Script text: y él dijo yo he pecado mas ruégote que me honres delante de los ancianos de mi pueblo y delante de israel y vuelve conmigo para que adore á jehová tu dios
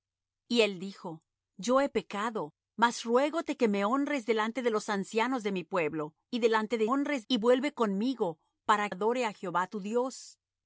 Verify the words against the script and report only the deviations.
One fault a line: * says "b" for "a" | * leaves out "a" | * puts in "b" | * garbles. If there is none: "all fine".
* says "honres" for "israel"
* leaves out "que"